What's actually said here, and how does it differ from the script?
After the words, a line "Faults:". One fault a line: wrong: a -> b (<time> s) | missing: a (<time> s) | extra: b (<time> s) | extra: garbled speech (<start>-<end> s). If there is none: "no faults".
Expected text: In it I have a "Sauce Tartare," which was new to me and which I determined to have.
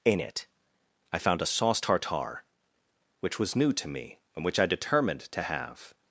In it I found a "Sauce Tartare," which was new to me and which I determined to have.
Faults:
wrong: have -> found (1.2 s)